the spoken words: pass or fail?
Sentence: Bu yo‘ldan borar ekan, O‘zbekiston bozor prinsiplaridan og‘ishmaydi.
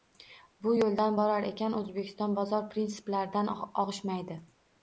pass